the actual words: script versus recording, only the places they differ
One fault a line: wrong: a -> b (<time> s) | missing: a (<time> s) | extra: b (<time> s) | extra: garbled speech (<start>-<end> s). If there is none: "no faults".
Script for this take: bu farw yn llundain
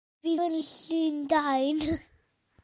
missing: farw (0.3 s)